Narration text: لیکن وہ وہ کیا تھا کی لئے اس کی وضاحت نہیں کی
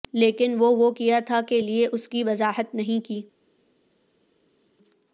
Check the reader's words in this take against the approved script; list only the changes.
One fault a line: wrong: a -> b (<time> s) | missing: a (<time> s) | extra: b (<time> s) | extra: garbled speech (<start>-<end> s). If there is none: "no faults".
wrong: کی -> کے (1.5 s)